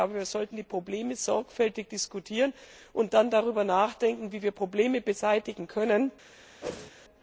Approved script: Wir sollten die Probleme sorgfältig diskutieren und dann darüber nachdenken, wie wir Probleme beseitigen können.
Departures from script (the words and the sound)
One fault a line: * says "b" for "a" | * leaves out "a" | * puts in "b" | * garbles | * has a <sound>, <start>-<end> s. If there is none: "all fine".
* has a whoosh, 6.6-6.9 s